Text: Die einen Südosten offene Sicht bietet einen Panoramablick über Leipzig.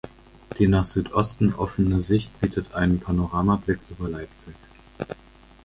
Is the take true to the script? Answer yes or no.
no